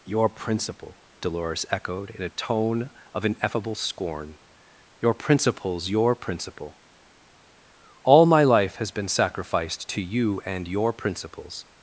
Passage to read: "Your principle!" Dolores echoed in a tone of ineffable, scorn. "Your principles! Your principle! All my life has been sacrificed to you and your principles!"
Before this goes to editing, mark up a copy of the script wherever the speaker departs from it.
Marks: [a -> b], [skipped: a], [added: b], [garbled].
"Your principle!" Dolores echoed in a tone of ineffable, scorn. "Your principles! Your principle! All my life has been sacrificed to you and your principles!"